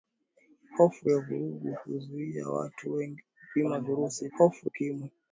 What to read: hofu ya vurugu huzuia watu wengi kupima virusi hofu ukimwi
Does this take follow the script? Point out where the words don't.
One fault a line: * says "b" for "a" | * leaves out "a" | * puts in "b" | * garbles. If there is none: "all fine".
all fine